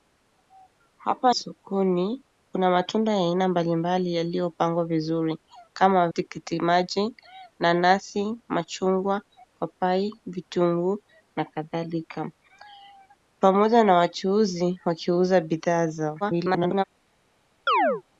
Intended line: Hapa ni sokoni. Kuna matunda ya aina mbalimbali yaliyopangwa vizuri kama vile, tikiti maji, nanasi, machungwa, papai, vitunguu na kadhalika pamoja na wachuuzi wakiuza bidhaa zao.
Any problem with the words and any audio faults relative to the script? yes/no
yes